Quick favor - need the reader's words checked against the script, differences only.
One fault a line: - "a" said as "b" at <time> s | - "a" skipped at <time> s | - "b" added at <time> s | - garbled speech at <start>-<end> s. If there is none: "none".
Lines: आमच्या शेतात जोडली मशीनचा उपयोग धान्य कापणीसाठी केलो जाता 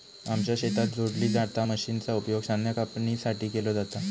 - "जाता" added at 1.3 s